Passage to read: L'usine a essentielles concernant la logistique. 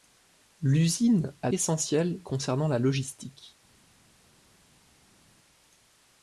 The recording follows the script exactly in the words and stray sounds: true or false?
true